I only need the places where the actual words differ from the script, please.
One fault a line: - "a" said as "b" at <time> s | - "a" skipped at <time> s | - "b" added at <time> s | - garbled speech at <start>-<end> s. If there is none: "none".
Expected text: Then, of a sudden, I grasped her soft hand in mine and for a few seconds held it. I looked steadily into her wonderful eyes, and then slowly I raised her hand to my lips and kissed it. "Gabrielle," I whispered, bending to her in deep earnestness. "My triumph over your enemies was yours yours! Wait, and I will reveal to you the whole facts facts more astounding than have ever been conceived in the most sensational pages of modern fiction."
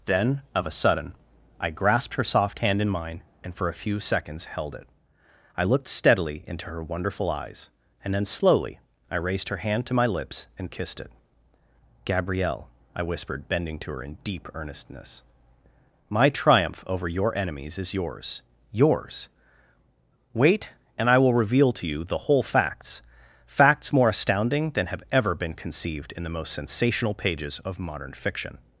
- "was" said as "is" at 17.8 s